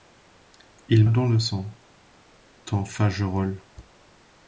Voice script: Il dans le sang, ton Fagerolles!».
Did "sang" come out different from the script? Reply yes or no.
no